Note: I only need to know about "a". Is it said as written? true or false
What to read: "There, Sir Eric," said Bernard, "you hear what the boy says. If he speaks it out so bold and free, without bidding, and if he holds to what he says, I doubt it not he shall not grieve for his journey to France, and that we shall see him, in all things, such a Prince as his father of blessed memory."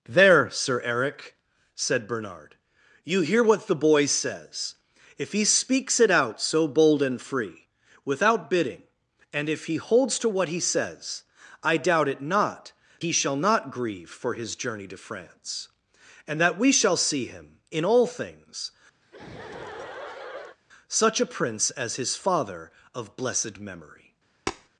true